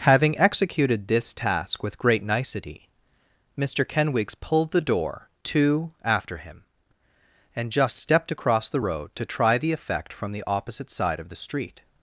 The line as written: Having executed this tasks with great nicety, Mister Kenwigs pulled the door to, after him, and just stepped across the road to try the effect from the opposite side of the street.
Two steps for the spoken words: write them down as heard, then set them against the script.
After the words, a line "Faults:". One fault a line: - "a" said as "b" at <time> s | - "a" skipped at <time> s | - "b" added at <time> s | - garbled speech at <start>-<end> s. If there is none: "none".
Having executed this task with great nicety, Mister Kenwigs pulled the door to, after him, and just stepped across the road to try the effect from the opposite side of the street.
Faults:
- "tasks" said as "task" at 1.3 s